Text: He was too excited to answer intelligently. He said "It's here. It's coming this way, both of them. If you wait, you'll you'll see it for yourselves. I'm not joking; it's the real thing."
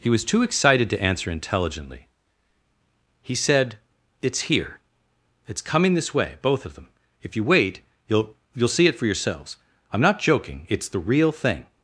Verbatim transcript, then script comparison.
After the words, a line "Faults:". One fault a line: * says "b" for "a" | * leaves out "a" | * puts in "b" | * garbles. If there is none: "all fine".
He was too excited to answer intelligently. He said "It's here. It's coming this way, both of them. If you wait, you'll you'll see it for yourselves. I'm not joking; it's the real thing."
Faults:
all fine